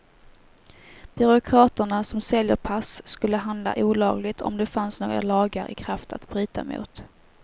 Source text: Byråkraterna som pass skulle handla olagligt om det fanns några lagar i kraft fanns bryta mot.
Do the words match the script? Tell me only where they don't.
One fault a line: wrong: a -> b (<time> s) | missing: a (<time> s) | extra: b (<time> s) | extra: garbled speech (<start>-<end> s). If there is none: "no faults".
extra: säljer (2.2 s)
wrong: fanns -> att (6.1 s)